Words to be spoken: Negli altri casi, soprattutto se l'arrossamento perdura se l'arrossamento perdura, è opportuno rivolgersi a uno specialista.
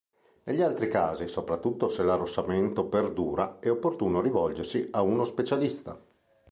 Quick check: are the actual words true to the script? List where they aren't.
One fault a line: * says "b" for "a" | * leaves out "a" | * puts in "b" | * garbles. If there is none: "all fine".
* leaves out "se l'arrossamento perdura"